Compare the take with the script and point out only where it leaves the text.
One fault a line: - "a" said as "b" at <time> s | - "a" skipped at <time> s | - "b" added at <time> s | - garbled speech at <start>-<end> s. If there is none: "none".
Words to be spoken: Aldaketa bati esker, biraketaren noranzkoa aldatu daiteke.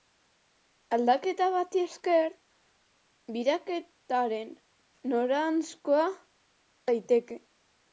- "aldatu" skipped at 6.1 s